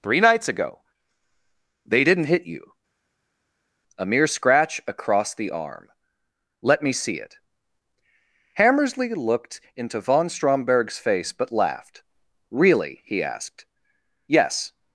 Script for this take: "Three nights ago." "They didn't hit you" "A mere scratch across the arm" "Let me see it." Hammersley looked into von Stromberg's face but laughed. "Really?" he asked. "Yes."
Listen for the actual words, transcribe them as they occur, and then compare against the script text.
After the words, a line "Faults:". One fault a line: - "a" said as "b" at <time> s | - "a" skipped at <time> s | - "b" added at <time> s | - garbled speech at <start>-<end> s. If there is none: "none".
"Three nights ago." "They didn't hit you" "A mere scratch across the arm" "Let me see it." Hammersley looked into von Stromberg's face but laughed. "Really?" he asked. "Yes."
Faults:
none